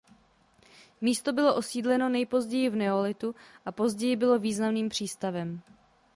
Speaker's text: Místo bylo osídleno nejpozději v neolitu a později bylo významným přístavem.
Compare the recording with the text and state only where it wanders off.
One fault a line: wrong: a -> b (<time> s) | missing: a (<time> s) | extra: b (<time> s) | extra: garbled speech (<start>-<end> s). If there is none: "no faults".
no faults